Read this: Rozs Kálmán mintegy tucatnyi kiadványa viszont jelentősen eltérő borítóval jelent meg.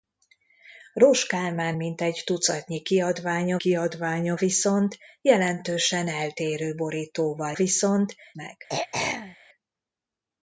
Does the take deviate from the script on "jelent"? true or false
true